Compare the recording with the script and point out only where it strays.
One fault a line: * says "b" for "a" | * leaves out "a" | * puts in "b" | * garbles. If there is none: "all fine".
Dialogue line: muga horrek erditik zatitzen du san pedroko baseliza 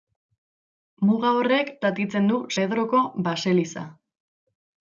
* leaves out "erditik"
* leaves out "san"